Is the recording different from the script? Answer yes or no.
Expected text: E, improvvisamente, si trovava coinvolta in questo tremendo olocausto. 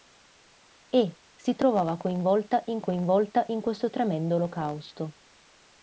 yes